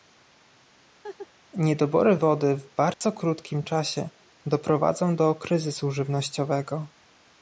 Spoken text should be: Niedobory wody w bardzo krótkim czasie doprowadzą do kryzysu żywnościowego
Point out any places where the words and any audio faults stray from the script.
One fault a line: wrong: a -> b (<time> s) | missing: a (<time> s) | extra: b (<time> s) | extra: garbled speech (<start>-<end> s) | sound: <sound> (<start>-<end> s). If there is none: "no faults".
sound: laugh (1.0-1.3 s)
sound: dropout (2.9-3.0 s)